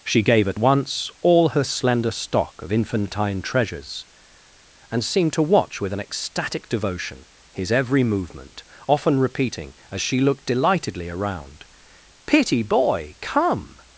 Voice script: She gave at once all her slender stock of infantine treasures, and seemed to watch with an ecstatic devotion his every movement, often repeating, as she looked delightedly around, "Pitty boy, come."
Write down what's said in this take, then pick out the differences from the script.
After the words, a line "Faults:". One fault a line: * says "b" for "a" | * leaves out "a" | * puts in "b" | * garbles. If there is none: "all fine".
She gave at once all her slender stock of infantine treasures, and seemed to watch with an ecstatic devotion his every movement, often repeating, as she looked delightedly around, "Pitty boy, come."
Faults:
all fine